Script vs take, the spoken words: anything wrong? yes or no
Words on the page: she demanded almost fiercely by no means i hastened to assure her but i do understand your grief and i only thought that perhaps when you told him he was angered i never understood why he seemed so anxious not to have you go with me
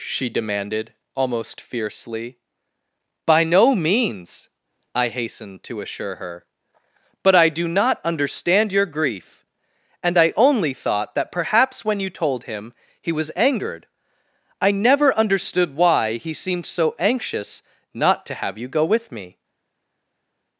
yes